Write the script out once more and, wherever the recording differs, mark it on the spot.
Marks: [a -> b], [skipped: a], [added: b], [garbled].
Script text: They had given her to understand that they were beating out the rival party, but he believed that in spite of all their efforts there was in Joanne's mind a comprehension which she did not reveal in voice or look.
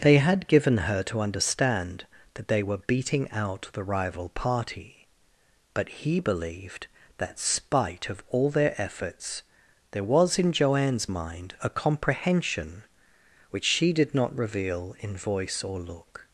They had given her to understand that they were beating out the rival party, but he believed that [skipped: in] spite of all their efforts there was in Joanne's mind a comprehension which she did not reveal in voice or look.